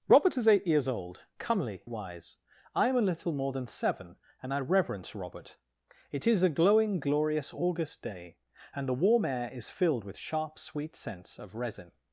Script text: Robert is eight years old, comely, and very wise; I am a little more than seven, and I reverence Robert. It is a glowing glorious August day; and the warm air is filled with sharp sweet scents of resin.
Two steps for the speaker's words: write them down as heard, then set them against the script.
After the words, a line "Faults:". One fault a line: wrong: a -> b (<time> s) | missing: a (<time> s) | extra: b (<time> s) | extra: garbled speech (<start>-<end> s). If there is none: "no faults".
Robert is eight years old, comely, wise; I am a little more than seven, and I reverence Robert. It is a glowing glorious August day; and the warm air is filled with sharp sweet scents of resin.
Faults:
missing: and very (1.8 s)